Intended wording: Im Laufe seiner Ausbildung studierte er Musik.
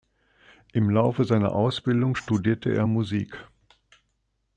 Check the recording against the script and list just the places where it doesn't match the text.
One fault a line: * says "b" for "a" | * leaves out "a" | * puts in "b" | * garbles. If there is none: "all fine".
all fine